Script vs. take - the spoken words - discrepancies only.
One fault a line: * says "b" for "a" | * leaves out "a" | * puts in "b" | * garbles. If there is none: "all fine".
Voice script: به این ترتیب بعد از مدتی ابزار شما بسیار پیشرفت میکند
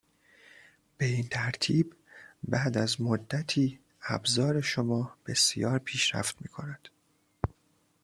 all fine